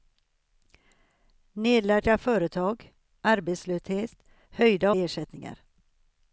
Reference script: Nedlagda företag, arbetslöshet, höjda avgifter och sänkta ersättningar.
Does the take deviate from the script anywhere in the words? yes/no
yes